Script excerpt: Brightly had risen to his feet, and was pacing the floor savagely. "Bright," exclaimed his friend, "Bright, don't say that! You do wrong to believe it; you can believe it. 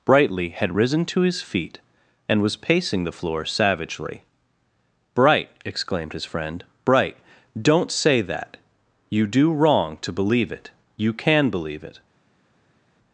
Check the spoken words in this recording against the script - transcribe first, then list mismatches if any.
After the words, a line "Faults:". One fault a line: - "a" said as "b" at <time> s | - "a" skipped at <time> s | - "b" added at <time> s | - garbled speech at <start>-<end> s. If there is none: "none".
Brightly had risen to his feet, and was pacing the floor savagely. "Bright," exclaimed his friend, "Bright, don't say that! You do wrong to believe it; you can believe it.
Faults:
none